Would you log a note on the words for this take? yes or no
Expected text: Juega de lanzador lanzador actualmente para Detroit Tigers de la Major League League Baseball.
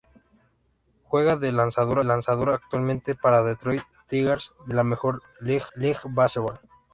no